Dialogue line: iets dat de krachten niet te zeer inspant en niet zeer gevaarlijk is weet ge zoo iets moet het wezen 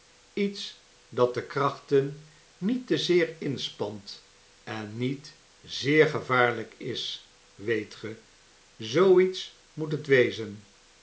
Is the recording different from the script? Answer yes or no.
no